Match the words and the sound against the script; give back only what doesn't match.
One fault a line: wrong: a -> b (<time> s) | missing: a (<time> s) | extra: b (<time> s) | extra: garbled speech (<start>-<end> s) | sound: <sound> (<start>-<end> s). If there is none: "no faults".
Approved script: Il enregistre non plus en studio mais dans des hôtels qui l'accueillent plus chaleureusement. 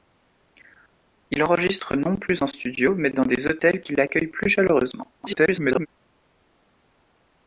extra: garbled speech (5.2-5.9 s)